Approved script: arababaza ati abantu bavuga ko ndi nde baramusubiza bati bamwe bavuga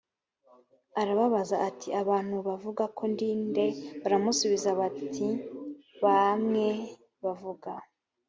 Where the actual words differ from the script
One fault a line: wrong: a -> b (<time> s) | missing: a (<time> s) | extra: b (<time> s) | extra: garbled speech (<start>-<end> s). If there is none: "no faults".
no faults